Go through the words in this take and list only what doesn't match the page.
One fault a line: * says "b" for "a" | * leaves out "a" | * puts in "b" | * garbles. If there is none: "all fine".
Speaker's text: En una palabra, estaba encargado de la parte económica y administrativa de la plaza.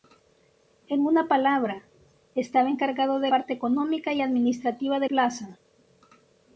* leaves out "la"
* leaves out "la"